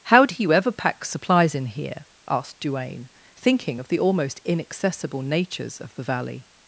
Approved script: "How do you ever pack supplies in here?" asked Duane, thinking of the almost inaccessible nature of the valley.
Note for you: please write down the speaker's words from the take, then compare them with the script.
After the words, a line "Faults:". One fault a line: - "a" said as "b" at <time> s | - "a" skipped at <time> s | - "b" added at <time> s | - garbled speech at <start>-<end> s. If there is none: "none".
"How do you ever pack supplies in here?" asked Duane, thinking of the almost inaccessible natures of the valley.
Faults:
- "nature" said as "natures" at 5.2 s